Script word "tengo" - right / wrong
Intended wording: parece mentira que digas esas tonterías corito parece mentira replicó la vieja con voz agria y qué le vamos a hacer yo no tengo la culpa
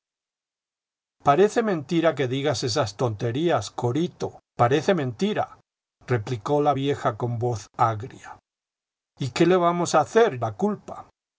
wrong